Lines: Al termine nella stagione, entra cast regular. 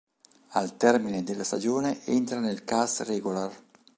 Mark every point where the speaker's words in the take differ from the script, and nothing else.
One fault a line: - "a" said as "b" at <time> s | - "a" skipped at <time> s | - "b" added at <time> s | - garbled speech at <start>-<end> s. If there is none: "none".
- "nella" said as "della" at 1.2 s
- "nel" added at 2.4 s